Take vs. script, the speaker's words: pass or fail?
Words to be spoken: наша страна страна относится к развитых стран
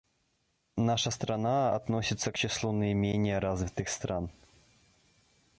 fail